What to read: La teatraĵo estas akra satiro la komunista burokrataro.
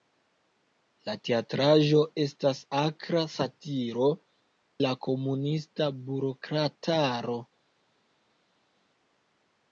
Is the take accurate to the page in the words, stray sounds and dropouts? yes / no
yes